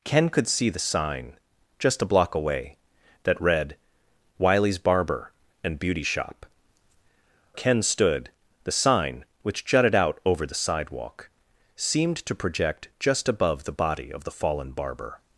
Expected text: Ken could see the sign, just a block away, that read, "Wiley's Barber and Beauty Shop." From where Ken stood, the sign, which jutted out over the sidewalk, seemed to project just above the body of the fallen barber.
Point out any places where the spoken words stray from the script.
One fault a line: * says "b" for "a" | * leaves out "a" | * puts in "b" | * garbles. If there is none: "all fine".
* leaves out "From where"